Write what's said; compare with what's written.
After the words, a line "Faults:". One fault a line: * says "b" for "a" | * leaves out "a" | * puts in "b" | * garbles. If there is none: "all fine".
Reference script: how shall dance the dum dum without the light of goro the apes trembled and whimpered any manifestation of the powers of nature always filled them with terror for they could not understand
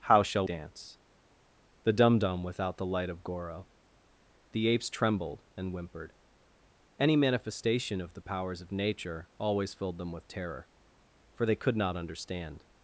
how shall dance the dum dum without the light of goro the apes trembled and whimpered any manifestation of the powers of nature always filled them with terror for they could not understand
Faults:
all fine